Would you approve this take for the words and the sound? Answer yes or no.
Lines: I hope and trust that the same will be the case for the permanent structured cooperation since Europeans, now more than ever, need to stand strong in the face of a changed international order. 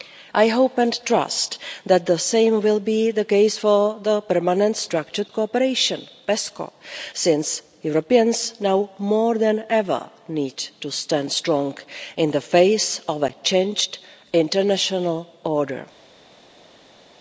yes